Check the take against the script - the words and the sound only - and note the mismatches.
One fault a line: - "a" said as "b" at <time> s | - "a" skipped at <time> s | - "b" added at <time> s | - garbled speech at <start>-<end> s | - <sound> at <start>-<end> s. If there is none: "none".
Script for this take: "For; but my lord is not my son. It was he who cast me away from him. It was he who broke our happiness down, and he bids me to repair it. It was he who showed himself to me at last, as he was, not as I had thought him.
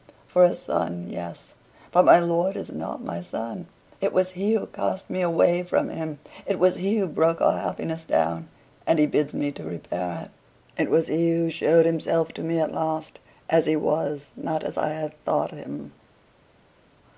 - "a son yes" added at 0.4 s